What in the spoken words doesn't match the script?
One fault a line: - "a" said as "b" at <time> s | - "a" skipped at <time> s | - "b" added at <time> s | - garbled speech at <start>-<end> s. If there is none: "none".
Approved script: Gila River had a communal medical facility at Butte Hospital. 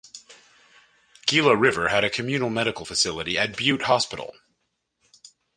none